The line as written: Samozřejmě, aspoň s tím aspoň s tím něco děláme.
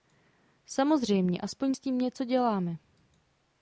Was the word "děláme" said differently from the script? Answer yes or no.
no